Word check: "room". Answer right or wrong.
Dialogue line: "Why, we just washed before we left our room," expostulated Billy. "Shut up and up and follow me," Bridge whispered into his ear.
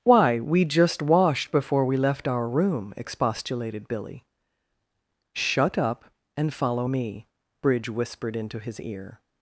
right